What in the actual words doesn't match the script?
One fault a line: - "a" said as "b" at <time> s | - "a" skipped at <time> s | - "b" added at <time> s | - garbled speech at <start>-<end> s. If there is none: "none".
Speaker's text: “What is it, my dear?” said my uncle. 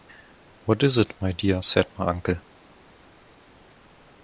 none